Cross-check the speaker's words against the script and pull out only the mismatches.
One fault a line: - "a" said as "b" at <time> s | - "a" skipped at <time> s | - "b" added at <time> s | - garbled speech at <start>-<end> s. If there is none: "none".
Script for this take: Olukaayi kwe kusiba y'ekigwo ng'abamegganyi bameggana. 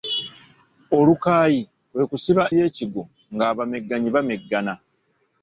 none